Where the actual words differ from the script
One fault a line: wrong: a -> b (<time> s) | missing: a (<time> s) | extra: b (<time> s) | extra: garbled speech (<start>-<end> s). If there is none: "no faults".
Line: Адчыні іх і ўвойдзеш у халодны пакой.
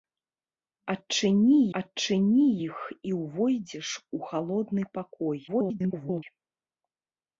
extra: адчыні (1.8 s)
extra: garbled speech (5.5-6.2 s)